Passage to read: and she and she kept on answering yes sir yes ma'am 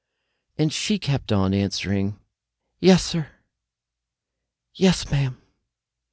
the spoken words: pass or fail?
fail